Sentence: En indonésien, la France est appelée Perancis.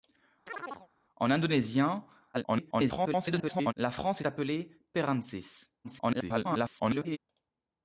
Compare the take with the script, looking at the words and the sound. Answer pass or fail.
fail